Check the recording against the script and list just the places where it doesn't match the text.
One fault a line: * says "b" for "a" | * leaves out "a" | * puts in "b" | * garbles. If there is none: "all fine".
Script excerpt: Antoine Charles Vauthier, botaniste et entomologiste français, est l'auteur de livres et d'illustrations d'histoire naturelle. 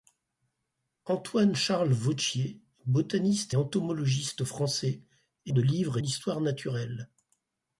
* leaves out "et"
* leaves out "l'auteur"
* leaves out "d'illustrations"